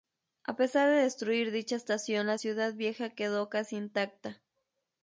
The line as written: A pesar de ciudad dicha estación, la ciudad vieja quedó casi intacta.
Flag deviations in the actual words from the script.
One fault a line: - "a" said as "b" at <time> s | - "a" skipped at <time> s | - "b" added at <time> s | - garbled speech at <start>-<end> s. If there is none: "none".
- "ciudad" said as "destruir" at 0.9 s